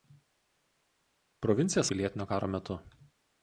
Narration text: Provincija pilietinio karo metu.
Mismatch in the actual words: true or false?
false